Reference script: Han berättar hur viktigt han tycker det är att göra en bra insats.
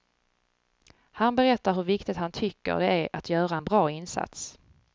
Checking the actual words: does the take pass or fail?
pass